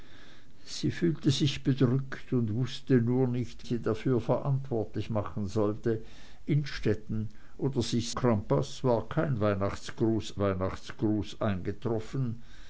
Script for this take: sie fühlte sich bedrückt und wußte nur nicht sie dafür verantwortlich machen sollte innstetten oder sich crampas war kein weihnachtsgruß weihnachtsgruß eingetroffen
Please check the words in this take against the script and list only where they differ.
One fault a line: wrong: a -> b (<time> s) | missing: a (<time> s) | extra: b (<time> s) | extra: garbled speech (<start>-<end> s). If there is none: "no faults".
no faults